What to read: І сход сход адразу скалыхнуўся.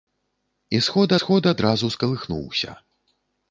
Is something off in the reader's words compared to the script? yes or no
no